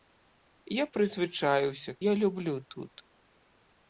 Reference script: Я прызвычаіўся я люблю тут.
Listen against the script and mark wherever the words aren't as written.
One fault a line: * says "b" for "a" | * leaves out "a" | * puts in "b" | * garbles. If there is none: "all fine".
all fine